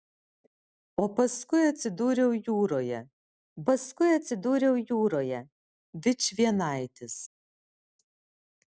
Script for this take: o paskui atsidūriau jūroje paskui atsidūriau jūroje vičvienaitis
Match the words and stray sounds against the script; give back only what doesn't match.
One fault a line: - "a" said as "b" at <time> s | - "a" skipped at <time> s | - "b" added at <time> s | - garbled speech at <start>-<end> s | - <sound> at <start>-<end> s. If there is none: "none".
none